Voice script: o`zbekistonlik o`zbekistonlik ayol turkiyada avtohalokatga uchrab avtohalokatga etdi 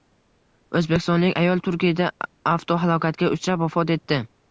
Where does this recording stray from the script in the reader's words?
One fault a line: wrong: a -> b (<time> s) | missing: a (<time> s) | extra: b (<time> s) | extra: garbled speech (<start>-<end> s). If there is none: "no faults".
missing: o`zbekistonlik (1.4 s)
wrong: avtohalokatga -> vafot (3.7 s)